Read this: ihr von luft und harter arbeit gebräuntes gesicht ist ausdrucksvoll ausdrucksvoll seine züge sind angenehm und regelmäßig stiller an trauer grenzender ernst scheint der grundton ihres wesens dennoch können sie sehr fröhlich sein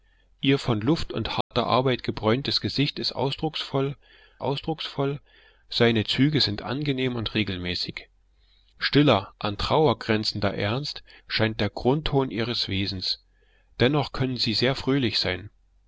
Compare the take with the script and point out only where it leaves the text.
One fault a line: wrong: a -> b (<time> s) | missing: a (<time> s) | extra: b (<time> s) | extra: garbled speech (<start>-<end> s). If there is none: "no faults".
no faults